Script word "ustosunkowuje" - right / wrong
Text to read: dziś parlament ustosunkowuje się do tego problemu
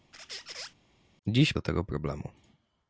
wrong